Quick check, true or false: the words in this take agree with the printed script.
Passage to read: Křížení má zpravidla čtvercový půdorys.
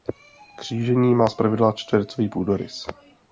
true